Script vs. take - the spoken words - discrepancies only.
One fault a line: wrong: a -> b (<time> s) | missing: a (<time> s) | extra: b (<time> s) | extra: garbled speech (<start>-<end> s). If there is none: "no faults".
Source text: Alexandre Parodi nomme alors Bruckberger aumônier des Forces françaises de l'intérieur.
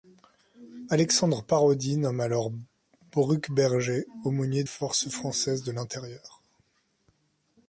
missing: des (4.6 s)